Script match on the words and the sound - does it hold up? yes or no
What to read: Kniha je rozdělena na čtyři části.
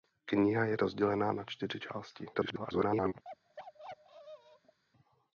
no